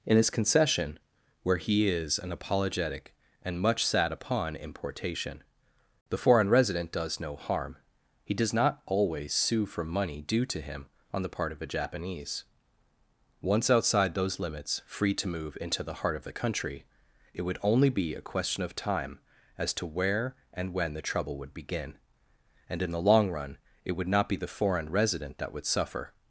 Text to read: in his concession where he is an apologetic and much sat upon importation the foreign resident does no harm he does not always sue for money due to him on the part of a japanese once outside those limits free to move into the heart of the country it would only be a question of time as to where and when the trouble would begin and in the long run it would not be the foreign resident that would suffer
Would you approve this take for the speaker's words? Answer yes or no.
yes